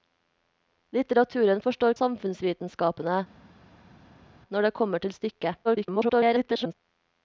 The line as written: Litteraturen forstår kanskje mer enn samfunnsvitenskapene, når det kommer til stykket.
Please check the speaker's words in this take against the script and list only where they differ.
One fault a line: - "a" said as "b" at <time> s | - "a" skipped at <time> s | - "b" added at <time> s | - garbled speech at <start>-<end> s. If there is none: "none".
- "kanskje mer enn" skipped at 2.0 s
- garbled speech at 5.6-6.7 s